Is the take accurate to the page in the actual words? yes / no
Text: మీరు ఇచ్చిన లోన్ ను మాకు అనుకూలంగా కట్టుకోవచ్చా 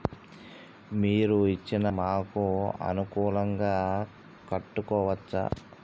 no